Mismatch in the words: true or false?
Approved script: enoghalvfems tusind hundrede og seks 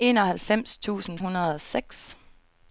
false